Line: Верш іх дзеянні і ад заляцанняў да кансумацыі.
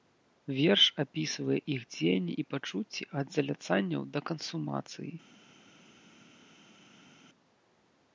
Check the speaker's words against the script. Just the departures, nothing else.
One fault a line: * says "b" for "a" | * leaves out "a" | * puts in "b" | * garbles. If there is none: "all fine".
* puts in "апісвае"
* puts in "пачуцці"